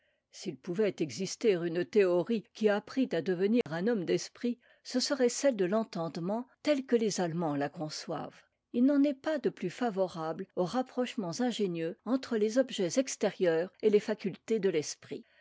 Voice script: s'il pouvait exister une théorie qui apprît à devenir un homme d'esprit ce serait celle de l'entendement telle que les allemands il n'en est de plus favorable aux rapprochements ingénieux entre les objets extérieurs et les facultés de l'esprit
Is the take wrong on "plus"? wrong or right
right